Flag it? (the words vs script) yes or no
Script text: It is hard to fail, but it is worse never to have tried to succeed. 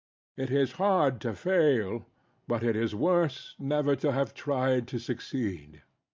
no